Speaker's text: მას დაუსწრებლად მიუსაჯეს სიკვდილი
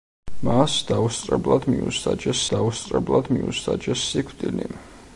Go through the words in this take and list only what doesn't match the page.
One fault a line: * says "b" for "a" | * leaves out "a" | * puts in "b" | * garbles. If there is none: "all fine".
* puts in "დაუსწრებლად მიუსაჯეს"